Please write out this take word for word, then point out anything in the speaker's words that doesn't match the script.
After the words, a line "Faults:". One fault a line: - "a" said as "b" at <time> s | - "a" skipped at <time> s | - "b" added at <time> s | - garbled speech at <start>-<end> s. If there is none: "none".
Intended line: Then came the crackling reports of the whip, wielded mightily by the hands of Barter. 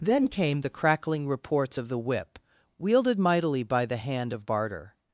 Then came the crackling reports of the whip, wielded mightily by the hand of Barter.
Faults:
- "hands" said as "hand" at 4.0 s